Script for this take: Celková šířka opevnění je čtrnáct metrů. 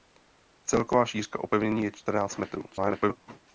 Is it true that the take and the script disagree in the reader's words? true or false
true